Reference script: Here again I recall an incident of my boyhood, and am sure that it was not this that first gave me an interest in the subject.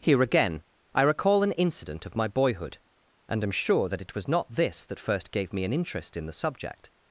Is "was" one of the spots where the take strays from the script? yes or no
no